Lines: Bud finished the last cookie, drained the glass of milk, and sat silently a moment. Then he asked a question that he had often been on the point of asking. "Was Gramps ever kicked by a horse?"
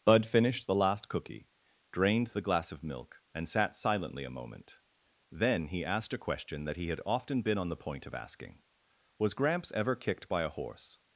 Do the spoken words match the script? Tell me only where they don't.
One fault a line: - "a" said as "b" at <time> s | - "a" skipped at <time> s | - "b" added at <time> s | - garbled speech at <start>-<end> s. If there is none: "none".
none